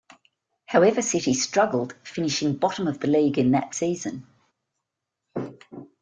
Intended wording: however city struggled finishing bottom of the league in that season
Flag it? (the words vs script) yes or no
no